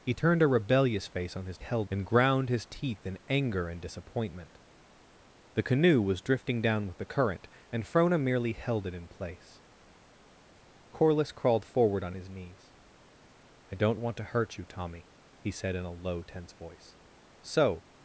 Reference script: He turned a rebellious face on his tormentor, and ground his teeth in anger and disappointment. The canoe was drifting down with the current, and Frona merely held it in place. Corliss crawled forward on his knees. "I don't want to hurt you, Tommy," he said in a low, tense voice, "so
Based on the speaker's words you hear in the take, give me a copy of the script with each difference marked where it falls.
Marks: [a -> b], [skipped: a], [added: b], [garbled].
He turned a rebellious face on his [tormentor, -> held] and ground his teeth in anger and disappointment. The canoe was drifting down with the current, and Frona merely held it in place. Corliss crawled forward on his knees. "I don't want to hurt you, Tommy," he said in a low, tense voice, "so